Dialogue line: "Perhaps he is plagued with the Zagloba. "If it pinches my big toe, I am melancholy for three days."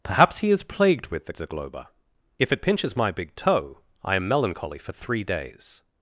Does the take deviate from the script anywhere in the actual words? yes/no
no